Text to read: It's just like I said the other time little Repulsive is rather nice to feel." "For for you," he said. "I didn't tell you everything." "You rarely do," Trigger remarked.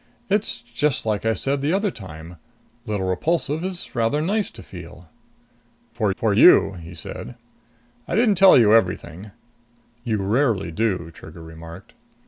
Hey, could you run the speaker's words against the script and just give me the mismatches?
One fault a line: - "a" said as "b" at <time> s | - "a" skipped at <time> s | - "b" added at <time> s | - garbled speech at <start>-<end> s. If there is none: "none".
none